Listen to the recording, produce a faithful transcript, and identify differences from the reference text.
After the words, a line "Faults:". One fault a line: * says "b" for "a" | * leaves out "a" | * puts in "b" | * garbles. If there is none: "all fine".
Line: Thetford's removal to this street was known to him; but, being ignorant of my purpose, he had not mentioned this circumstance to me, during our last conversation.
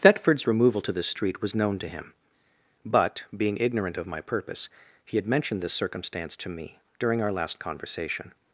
Thetford's removal to this street was known to him; but, being ignorant of my purpose, he had mentioned this circumstance to me, during our last conversation.
Faults:
* leaves out "not"